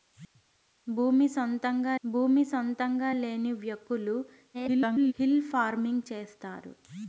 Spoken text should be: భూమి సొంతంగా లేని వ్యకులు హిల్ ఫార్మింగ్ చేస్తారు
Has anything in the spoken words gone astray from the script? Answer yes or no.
yes